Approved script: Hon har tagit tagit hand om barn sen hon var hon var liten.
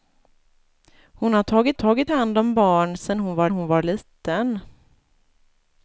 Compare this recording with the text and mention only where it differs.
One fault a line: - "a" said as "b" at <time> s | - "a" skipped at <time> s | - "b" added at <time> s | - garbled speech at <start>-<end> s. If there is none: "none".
none